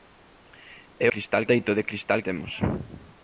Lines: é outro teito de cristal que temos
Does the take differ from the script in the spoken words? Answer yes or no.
yes